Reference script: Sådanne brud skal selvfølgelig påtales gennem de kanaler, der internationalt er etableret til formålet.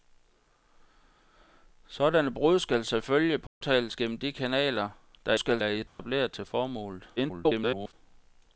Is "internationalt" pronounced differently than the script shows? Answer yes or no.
yes